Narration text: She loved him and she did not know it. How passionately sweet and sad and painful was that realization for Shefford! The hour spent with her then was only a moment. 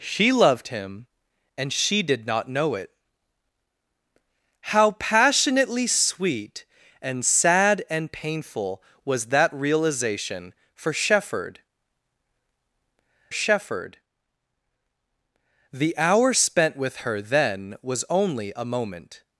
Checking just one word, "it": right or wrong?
right